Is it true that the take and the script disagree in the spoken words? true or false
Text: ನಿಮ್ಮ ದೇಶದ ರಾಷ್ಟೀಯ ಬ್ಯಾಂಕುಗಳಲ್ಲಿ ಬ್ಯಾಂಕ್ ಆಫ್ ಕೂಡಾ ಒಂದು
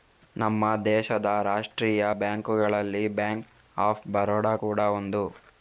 true